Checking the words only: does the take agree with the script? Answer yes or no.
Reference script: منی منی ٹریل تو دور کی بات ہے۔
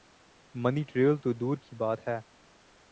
no